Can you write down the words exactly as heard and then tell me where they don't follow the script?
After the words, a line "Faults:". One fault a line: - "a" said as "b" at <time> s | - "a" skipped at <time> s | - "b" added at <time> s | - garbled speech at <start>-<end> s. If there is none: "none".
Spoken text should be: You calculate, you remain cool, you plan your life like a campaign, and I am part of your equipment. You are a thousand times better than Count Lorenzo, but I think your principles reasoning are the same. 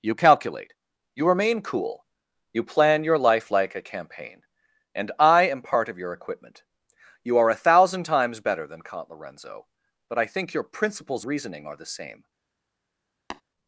You calculate, you remain cool, you plan your life like a campaign, and I am part of your equipment. You are a thousand times better than Count Lorenzo, but I think your principles reasoning are the same.
Faults:
none